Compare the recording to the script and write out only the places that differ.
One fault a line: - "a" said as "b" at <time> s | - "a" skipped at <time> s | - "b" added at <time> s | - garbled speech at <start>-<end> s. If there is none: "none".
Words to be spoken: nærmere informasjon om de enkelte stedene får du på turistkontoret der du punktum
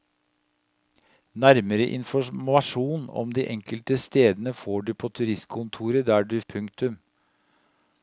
none